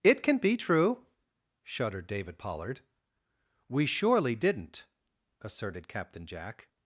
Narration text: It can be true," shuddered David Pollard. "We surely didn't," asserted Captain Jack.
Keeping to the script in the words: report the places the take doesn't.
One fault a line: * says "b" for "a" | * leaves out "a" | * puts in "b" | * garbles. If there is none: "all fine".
all fine